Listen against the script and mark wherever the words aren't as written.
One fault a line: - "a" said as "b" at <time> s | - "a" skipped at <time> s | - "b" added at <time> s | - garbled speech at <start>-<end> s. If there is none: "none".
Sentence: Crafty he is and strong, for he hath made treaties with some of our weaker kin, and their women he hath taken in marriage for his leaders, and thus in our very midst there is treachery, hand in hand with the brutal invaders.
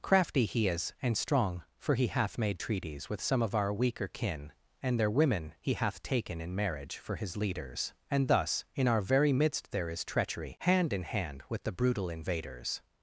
none